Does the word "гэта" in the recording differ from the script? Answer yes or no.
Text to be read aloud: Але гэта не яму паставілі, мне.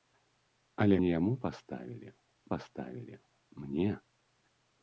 yes